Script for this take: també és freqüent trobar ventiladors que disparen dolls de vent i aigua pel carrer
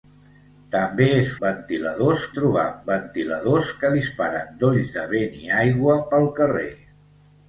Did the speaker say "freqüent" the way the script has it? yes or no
no